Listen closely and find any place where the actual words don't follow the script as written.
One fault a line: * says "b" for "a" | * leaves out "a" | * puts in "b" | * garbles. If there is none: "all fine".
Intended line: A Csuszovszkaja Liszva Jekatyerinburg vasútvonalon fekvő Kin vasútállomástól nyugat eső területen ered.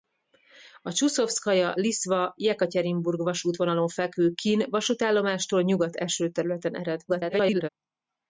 * garbles